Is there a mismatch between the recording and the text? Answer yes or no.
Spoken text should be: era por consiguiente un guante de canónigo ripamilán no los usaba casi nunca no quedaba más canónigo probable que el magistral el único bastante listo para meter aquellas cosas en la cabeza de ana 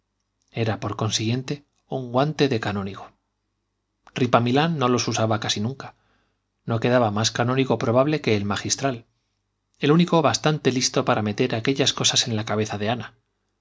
no